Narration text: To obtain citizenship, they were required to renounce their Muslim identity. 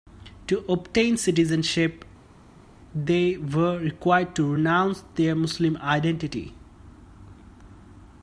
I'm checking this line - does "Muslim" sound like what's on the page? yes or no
yes